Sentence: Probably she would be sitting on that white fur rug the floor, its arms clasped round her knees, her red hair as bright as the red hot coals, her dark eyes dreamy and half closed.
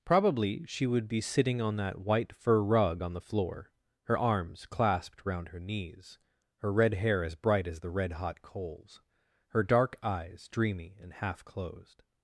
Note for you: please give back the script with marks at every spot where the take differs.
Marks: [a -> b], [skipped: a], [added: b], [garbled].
Probably she would be sitting on that white fur rug [added: on] the floor, [its -> her] arms clasped round her knees, her red hair as bright as the red hot coals, her dark eyes dreamy and half closed.